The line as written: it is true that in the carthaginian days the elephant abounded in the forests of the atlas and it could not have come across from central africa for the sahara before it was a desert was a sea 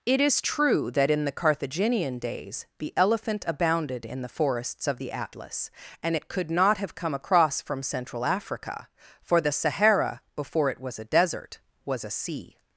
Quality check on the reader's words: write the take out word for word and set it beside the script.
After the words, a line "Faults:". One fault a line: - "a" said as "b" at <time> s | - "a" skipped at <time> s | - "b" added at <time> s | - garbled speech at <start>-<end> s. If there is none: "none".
it is true that in the carthaginian days the elephant abounded in the forests of the atlas and it could not have come across from central africa for the sahara before it was a desert was a sea
Faults:
none